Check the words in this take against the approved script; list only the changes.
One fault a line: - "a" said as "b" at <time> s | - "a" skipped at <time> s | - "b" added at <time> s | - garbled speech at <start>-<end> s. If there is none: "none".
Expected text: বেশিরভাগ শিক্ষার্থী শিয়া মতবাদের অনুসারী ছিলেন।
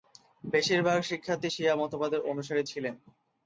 none